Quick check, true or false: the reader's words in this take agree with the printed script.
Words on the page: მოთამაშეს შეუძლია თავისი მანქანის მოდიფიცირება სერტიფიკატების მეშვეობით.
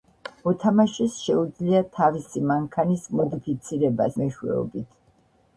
false